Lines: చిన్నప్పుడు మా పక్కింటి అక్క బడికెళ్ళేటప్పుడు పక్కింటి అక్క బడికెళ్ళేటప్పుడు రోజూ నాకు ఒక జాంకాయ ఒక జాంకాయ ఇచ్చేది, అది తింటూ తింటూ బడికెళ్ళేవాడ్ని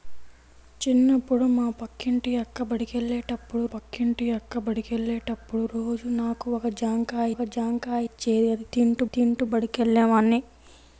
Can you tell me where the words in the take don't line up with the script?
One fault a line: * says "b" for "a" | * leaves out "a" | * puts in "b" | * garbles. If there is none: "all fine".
all fine